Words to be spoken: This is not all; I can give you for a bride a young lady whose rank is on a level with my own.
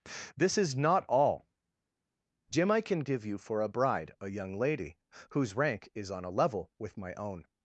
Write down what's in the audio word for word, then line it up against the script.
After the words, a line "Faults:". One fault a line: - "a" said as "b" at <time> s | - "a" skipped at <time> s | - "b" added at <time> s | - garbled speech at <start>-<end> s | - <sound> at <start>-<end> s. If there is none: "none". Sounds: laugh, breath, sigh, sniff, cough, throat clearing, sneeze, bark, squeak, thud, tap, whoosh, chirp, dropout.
This is not all; jim I can give you for a bride a young lady whose rank is on a level with my own.
Faults:
- "jim" added at 2.5 s